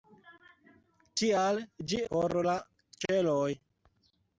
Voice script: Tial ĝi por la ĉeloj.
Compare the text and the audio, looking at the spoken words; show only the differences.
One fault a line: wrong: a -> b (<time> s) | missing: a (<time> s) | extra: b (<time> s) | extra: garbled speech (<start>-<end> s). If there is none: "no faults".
no faults